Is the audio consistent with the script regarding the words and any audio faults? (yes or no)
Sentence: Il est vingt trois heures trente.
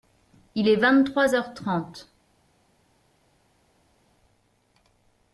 yes